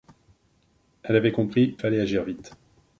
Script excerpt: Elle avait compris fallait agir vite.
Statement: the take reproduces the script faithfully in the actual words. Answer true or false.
true